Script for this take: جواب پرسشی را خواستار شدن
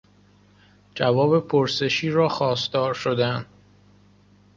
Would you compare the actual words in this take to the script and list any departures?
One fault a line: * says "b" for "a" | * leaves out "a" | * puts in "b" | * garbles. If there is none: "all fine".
all fine